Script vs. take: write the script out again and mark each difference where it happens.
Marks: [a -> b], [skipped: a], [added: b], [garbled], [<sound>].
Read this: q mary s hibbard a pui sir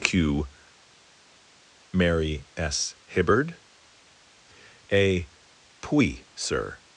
q mary s hibbard a pui sir